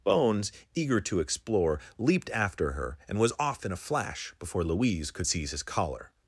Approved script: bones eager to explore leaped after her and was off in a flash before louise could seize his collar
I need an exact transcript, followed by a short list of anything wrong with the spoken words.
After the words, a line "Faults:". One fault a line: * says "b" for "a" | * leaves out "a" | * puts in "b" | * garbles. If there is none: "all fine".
bones eager to explore leaped after her and was off in a flash before louise could seize his collar
Faults:
all fine